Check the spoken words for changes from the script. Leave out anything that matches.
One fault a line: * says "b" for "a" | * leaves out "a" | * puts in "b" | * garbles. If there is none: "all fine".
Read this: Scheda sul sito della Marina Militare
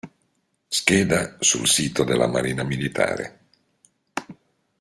all fine